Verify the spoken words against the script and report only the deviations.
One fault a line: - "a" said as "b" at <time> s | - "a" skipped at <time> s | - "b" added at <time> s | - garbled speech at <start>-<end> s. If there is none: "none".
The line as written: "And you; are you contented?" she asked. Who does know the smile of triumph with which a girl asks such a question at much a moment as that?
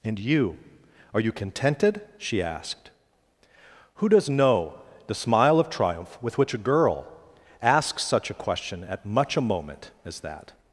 none